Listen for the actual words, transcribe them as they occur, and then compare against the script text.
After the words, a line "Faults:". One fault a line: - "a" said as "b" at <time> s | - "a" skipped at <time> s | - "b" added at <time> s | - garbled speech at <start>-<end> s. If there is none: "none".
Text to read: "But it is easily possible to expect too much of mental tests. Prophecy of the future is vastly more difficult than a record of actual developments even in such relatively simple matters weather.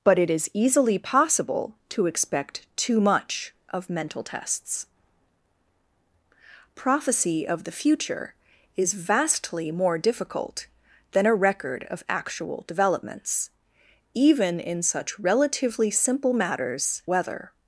"But it is easily possible to expect too much of mental tests. Prophecy of the future is vastly more difficult than a record of actual developments even in such relatively simple matters weather.
Faults:
none